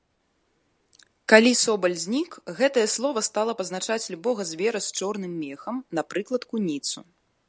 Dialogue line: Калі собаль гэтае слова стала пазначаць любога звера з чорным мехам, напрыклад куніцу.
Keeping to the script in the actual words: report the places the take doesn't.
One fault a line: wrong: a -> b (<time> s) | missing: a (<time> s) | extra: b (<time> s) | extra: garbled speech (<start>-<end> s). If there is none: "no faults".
extra: знік (2.0 s)